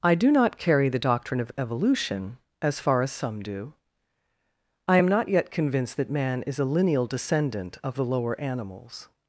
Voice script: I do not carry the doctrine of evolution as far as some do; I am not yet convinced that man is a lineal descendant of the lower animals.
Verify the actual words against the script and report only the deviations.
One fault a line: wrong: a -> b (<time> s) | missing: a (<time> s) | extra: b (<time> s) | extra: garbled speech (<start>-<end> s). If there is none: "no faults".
no faults